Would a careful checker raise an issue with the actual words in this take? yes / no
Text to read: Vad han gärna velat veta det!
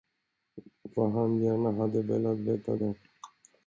yes